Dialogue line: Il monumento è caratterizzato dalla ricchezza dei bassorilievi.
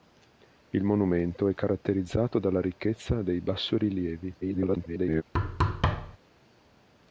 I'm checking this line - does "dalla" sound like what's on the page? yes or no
yes